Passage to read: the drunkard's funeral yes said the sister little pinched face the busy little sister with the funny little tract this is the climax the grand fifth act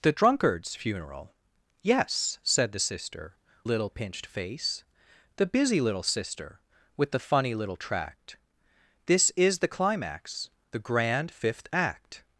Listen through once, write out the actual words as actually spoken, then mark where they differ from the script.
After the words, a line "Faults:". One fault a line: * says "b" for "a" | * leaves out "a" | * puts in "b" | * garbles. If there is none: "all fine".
the drunkard's funeral yes said the sister little pinched face the busy little sister with the funny little tract this is the climax the grand fifth act
Faults:
all fine